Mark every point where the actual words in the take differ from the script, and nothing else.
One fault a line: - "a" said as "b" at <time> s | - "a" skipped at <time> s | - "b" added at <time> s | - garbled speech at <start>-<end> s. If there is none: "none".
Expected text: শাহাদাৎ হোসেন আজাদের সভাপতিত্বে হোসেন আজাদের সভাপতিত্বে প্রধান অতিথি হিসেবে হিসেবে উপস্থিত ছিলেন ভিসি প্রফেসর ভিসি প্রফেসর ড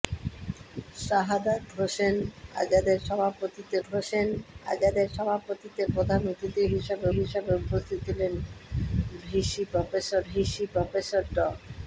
none